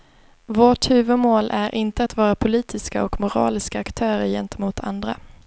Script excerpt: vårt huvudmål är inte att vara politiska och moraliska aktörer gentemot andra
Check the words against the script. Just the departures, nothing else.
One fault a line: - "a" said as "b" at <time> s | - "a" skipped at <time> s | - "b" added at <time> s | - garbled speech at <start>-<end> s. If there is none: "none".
none